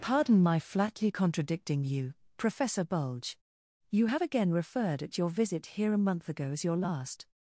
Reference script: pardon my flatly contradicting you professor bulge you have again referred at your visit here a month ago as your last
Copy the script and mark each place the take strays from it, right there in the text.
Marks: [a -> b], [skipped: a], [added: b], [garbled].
pardon my flatly contradicting you professor bulge you have again referred at your visit here a month ago as your last